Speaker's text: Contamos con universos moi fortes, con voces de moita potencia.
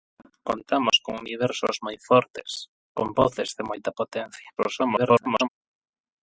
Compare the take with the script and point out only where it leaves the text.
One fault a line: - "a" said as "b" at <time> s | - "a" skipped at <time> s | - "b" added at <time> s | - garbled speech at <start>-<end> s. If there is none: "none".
- garbled speech at 4.6-5.5 s